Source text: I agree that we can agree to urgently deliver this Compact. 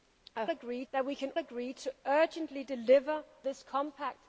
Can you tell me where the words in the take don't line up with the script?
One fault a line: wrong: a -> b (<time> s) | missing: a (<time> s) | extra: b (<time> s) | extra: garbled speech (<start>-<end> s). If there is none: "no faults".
no faults